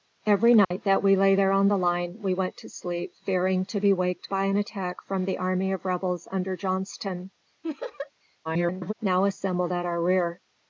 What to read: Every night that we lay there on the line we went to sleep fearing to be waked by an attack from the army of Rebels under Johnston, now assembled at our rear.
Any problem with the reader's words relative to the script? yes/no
yes